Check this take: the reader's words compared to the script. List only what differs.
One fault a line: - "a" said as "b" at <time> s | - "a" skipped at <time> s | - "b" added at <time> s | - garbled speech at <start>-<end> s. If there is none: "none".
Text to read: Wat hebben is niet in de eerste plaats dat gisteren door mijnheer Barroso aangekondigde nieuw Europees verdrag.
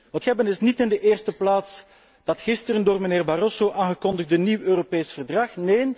none